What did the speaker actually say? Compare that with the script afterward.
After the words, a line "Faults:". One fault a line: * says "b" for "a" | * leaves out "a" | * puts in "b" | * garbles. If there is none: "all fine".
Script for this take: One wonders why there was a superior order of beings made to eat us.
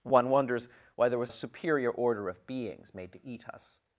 One wonders why there was a superior order of beings made to eat us.
Faults:
all fine